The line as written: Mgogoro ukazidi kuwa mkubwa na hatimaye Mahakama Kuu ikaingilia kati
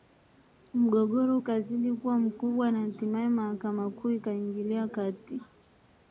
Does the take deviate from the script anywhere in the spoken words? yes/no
no